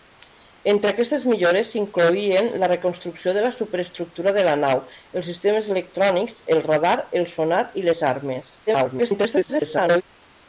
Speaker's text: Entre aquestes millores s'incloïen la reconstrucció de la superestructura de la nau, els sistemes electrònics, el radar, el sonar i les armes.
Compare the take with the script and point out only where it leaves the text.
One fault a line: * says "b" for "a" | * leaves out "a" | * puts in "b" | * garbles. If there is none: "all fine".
* garbles